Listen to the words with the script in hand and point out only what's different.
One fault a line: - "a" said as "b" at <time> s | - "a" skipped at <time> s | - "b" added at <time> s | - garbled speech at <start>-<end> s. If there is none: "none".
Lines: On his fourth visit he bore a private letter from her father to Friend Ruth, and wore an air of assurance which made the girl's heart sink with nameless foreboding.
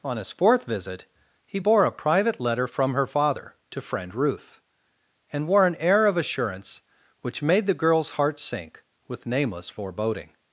none